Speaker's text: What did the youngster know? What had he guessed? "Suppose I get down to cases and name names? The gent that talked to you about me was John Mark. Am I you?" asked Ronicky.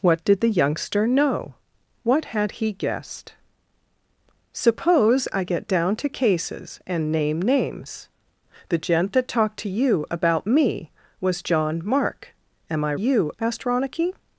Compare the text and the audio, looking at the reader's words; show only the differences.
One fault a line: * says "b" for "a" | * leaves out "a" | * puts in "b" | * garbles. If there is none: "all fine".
all fine